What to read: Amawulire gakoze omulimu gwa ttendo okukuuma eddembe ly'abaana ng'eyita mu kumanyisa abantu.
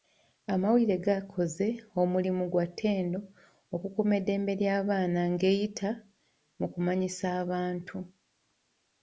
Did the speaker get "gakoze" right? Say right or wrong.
right